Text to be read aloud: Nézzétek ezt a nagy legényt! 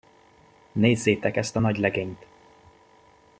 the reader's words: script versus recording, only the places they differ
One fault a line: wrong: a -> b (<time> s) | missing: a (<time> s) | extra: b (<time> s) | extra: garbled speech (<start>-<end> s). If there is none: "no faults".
no faults